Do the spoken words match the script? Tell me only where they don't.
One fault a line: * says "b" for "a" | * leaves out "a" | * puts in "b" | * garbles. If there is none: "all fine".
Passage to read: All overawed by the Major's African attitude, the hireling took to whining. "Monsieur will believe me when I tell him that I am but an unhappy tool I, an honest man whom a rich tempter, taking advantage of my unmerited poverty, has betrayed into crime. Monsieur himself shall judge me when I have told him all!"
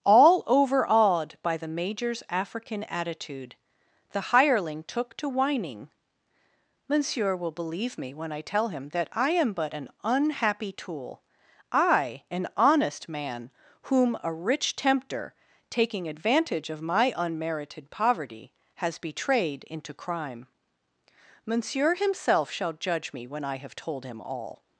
all fine